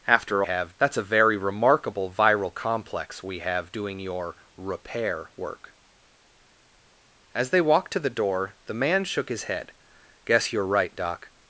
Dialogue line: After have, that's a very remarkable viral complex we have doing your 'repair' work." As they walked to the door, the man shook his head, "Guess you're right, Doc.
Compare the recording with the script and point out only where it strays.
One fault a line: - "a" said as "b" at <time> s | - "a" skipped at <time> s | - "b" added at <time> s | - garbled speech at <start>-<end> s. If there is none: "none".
none